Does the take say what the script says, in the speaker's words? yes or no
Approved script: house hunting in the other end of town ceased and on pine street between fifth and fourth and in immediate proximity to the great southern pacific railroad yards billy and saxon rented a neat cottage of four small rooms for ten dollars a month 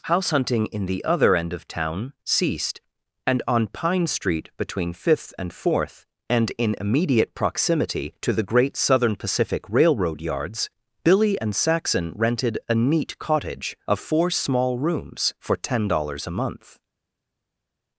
yes